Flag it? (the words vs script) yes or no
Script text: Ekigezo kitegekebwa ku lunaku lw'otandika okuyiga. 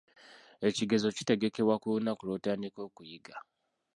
no